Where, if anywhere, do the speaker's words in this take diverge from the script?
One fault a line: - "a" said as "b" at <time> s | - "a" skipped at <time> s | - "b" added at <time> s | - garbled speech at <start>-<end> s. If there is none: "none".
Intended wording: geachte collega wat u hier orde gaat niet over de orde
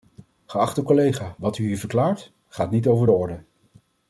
- "orde" said as "verklaart" at 1.8 s